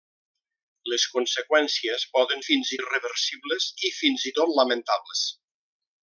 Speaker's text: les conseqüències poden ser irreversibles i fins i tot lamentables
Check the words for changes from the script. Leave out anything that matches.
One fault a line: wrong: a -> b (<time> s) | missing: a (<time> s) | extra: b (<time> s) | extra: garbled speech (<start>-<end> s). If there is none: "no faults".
wrong: ser -> fins (2.5 s)